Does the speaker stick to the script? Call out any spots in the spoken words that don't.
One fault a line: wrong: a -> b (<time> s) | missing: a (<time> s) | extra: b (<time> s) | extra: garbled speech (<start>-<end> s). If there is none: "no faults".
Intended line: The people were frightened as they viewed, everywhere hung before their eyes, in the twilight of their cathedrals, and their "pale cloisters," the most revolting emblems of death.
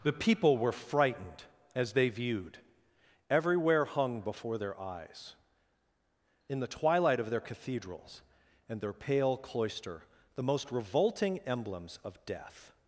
wrong: cloisters -> cloister (9.4 s)